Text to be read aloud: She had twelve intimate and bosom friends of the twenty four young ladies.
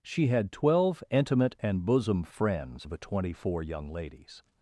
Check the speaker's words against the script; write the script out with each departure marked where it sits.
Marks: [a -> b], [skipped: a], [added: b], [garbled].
She had twelve intimate and bosom friends of the twenty four young ladies.